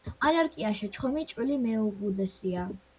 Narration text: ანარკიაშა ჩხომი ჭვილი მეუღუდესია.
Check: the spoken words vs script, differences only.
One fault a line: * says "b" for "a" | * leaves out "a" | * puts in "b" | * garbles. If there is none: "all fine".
all fine